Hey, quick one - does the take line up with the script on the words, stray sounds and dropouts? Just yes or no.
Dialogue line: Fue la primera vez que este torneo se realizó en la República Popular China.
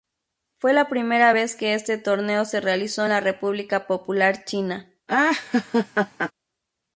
no